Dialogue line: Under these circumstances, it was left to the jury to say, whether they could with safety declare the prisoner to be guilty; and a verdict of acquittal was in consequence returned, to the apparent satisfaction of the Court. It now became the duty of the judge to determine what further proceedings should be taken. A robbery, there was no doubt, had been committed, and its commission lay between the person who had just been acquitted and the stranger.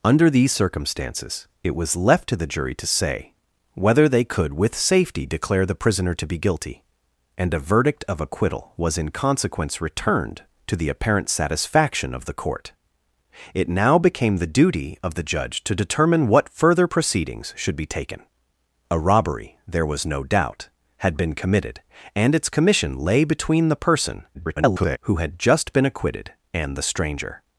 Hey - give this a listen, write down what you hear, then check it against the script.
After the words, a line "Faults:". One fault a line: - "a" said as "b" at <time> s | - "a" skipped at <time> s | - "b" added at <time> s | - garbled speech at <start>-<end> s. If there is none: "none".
Under these circumstances, it was left to the jury to say, whether they could with safety declare the prisoner to be guilty; and a verdict of acquittal was in consequence returned, to the apparent satisfaction of the Court. It now became the duty of the judge to determine what further proceedings should be taken. A robbery, there was no doubt, had been committed, and its commission lay between the person [garbled] who had just been acquitted and the stranger.
Faults:
- garbled speech at 24.3-25.0 s